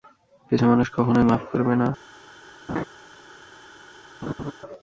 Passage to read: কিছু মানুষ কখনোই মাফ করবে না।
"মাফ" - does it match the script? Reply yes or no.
yes